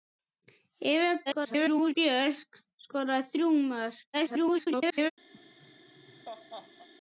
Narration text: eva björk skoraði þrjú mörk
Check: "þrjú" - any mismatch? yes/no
no